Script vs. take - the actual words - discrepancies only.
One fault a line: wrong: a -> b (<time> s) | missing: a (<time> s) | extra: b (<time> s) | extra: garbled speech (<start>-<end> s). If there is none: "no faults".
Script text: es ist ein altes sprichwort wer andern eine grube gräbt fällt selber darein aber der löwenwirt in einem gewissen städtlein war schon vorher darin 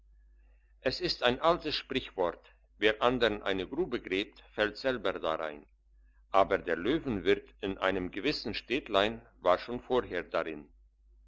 no faults